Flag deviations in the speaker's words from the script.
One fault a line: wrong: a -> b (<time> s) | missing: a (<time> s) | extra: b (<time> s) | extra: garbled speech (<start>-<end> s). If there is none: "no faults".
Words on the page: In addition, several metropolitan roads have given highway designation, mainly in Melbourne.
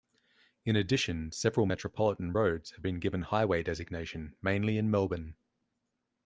extra: been (2.8 s)